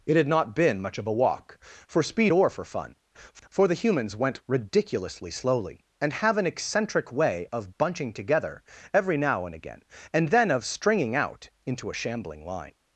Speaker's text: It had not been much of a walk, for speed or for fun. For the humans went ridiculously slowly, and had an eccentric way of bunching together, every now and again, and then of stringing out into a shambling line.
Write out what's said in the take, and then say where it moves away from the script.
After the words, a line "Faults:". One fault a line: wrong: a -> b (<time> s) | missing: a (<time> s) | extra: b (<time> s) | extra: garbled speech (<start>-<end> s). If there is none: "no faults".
It had not been much of a walk, for speed or for fun. For the humans went ridiculously slowly, and have an eccentric way of bunching together, every now and again, and then of stringing out into a shambling line.
Faults:
wrong: had -> have (6.1 s)